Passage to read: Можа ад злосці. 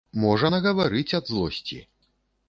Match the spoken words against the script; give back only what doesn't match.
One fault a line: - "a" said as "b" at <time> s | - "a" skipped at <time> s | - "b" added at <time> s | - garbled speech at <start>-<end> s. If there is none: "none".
- "нагаварыць" added at 0.5 s